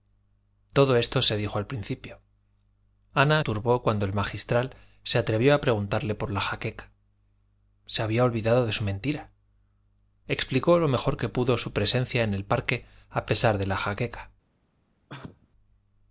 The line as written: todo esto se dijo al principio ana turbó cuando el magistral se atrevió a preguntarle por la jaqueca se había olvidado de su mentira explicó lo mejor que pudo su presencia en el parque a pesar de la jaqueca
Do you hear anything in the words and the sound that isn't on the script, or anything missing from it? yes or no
yes